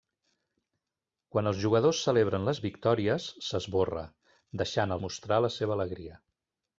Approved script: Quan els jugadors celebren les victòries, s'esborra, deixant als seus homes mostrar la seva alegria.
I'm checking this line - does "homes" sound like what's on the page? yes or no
no